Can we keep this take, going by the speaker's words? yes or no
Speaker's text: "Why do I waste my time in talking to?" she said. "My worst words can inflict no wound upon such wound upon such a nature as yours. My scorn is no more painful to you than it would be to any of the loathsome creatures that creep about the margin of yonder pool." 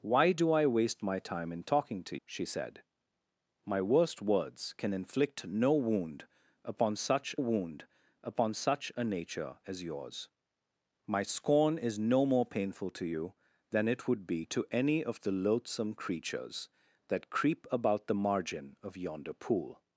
yes